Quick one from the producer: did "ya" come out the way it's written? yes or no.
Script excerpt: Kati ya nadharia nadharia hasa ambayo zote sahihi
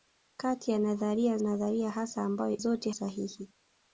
yes